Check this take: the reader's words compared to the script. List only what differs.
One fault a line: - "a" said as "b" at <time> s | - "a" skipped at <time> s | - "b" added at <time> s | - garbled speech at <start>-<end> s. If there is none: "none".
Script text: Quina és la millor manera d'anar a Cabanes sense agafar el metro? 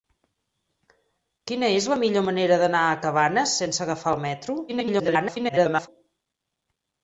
- garbled speech at 4.7-5.9 s